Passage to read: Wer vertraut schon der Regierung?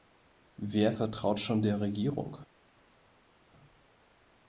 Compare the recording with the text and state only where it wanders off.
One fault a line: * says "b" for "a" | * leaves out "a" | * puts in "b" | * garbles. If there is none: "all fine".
all fine